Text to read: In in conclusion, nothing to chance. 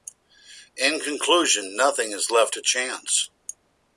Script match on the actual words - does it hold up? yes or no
no